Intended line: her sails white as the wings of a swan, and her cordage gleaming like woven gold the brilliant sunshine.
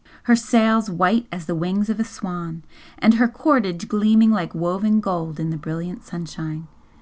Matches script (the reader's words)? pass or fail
fail